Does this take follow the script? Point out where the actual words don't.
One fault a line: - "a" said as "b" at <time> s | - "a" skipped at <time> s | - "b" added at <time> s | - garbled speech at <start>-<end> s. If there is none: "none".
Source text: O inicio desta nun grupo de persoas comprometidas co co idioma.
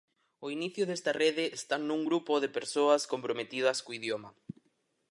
- "rede está" added at 1.2 s
- "co" skipped at 3.9 s